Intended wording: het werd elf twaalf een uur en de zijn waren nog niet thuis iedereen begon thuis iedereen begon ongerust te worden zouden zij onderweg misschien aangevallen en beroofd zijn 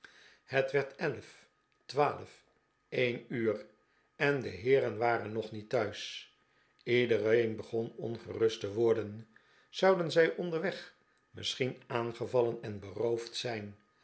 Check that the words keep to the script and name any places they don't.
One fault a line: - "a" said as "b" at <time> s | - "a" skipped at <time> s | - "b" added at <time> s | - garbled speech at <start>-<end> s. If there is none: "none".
- "zijn" said as "heeren" at 4.5 s
- "thuis iedereen begon" skipped at 7.9 s